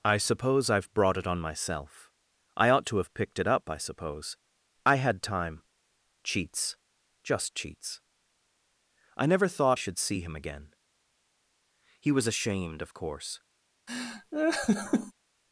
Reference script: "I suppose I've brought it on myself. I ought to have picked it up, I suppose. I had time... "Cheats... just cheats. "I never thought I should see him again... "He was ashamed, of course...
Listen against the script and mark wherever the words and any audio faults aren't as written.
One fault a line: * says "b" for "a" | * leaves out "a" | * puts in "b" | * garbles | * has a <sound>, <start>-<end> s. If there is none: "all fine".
* leaves out "I"
* has a laugh, 13.9-15.1 s